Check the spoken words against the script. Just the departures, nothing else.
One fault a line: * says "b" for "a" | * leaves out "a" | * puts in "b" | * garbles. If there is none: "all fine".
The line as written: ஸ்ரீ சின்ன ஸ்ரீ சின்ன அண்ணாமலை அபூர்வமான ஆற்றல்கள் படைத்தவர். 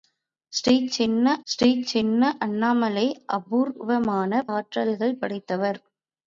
all fine